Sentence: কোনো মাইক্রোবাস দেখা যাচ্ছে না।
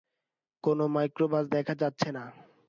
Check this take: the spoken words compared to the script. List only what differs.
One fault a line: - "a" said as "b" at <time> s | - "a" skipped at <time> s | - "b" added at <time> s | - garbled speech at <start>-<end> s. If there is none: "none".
none